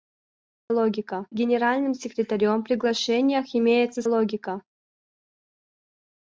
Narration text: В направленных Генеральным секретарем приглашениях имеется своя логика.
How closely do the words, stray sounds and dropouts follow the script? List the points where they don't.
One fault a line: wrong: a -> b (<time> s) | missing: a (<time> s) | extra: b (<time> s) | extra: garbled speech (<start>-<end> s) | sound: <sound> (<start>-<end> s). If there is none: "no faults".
wrong: направленных -> логика (0.7 s)
missing: своя (4.0 s)